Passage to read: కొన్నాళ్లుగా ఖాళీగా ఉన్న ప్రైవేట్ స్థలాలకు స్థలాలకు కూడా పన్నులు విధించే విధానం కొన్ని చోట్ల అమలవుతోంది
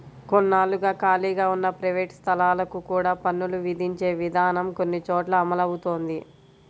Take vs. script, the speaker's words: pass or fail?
fail